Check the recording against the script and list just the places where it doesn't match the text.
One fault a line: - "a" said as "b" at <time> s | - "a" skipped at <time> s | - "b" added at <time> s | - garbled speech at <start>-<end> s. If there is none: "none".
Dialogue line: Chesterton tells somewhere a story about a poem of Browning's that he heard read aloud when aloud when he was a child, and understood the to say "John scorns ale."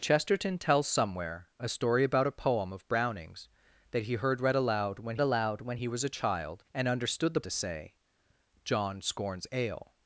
none